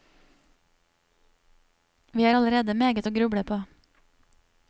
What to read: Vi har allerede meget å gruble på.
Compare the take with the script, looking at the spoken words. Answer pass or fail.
pass